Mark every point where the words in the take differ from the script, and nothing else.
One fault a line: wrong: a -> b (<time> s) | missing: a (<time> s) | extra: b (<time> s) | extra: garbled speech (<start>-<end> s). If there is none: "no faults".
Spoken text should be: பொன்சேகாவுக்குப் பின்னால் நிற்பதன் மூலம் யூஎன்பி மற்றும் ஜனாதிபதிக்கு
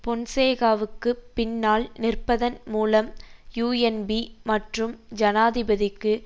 no faults